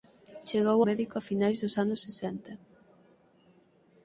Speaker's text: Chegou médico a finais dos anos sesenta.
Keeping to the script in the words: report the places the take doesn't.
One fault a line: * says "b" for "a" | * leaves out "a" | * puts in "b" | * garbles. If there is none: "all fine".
all fine